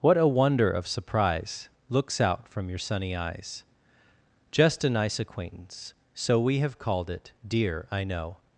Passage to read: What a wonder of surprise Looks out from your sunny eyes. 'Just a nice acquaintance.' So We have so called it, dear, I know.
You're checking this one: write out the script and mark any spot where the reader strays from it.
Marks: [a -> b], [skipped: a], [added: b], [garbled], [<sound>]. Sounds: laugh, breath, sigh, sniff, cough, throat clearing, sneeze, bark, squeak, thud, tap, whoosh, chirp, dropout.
What a wonder of surprise Looks out from your sunny eyes. 'Just a nice acquaintance.' So We have [skipped: so] called it, dear, I know.